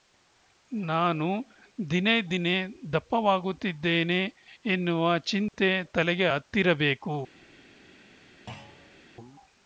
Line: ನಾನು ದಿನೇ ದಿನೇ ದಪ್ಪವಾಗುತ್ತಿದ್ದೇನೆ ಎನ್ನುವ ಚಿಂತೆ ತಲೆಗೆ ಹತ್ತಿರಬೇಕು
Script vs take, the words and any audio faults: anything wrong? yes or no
yes